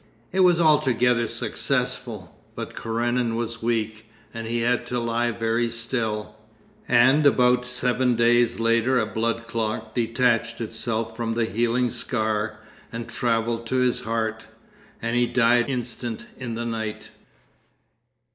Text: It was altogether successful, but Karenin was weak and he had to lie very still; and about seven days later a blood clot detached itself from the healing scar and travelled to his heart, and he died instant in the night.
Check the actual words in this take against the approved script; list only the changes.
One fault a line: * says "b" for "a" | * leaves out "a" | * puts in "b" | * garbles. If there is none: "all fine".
all fine